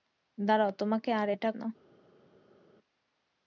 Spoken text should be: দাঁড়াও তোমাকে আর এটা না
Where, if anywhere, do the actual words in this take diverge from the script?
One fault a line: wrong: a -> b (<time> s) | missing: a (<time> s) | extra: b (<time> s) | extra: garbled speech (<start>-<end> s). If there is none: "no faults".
no faults